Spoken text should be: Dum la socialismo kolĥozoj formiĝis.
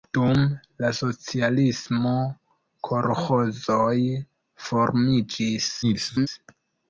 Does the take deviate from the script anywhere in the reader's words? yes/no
yes